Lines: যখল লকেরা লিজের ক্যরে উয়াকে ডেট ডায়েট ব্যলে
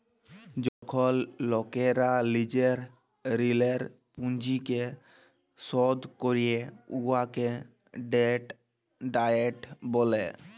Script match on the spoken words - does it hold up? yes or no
no